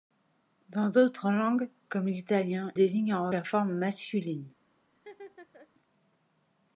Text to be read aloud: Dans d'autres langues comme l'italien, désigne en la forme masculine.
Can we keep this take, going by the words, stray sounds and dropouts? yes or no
no